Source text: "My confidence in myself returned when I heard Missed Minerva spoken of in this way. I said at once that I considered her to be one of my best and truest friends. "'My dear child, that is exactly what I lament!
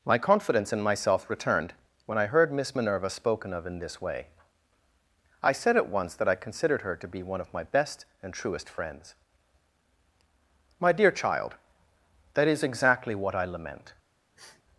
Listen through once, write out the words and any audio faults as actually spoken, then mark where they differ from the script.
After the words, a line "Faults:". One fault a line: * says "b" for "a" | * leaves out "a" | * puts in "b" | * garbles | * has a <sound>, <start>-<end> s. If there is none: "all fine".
"My confidence in myself returned when I heard Miss Minerva spoken of in this way. I said at once that I considered her to be one of my best and truest friends. "'My dear child, that is exactly what I lament!
Faults:
* says "Miss" for "Missed"
* has a sniff, 14.4-14.6 s